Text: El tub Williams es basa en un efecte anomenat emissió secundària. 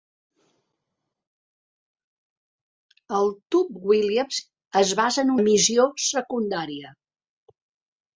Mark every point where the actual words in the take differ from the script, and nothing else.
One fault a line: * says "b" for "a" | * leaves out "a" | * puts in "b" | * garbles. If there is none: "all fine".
* leaves out "un efecte anomenat"